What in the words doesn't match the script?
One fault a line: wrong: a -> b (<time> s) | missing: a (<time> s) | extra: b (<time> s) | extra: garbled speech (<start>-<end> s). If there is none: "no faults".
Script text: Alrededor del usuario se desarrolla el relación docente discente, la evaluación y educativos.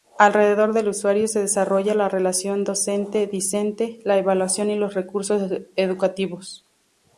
wrong: el -> la (1.9 s)
extra: los recursos (4.8 s)